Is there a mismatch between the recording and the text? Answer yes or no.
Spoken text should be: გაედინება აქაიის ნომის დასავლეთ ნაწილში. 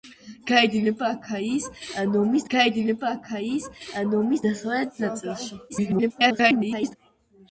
yes